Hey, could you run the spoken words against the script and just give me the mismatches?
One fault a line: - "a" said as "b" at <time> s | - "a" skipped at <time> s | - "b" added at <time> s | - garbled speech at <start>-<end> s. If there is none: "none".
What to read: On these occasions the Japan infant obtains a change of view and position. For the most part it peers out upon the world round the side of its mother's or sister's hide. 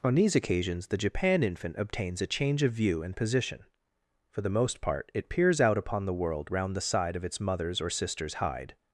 none